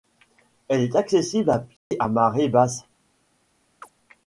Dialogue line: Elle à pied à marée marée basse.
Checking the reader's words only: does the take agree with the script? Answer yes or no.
no